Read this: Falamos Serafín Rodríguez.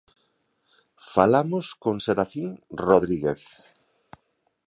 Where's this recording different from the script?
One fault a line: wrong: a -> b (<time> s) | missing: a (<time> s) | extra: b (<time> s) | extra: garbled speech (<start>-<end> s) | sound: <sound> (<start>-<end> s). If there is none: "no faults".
extra: con (1.8 s)